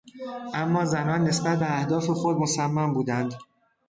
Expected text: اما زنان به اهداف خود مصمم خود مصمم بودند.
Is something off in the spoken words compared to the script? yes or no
yes